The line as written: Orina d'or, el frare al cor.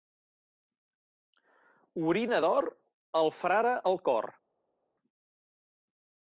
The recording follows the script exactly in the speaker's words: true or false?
true